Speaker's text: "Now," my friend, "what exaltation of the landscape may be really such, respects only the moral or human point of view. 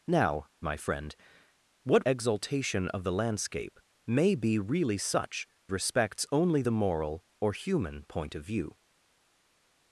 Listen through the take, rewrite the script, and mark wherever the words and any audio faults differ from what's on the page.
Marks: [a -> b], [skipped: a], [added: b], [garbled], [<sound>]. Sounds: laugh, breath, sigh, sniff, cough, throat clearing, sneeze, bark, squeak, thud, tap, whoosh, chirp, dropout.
"Now," my friend, "what exaltation of the landscape may be really such, respects only the moral or human point of view.